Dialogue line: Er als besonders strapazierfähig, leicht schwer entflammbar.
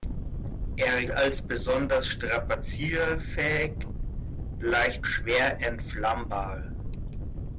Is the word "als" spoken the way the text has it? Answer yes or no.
yes